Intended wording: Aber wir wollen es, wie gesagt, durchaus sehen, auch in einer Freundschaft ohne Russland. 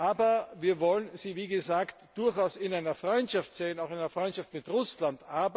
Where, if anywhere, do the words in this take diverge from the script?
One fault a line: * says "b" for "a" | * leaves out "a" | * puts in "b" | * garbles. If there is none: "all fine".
* says "sie" for "es"
* puts in "in einer Freundschaft"
* says "mit" for "ohne"